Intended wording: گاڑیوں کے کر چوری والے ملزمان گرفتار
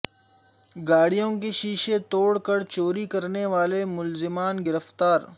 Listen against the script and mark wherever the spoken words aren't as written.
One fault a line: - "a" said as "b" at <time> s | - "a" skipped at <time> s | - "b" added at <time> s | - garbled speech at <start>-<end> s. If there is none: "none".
- "شیشے توڑ" added at 1.5 s
- "کرنے" added at 3.0 s